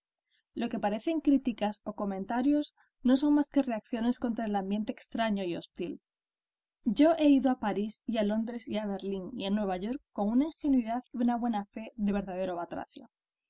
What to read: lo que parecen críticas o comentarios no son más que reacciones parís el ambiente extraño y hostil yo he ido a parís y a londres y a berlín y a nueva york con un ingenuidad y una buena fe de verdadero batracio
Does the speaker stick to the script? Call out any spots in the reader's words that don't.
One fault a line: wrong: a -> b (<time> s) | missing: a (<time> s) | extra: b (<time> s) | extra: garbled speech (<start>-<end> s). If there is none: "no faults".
wrong: parís -> contra (4.2 s)
wrong: un -> una (10.3 s)